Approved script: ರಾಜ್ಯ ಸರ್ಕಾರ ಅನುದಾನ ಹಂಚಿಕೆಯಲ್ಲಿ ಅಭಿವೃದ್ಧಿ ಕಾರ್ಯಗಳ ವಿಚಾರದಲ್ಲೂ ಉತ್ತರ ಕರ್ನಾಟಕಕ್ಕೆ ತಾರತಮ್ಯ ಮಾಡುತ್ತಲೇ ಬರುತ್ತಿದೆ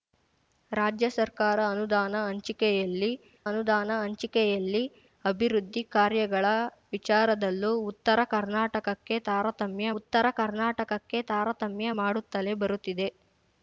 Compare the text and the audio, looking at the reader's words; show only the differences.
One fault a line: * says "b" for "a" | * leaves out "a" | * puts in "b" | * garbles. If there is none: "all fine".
* puts in "ಅನುದಾನ ಹಂಚಿಕೆಯಲ್ಲಿ"
* puts in "ಉತ್ತರ ಕರ್ನಾಟಕಕ್ಕೆ ತಾರತಮ್ಯ"